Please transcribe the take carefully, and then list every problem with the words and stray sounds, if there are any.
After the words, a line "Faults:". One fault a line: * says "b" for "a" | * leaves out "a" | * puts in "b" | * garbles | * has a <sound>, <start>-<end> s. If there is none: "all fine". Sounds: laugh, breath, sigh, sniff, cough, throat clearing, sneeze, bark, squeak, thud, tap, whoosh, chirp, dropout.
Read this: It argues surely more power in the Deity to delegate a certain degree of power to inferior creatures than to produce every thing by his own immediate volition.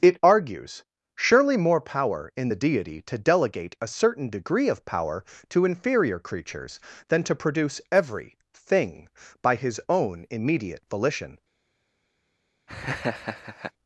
It argues surely more power in the Deity to delegate a certain degree of power to inferior creatures than to produce every thing by his own immediate volition.
Faults:
* has a laugh, 12.7-13.7 s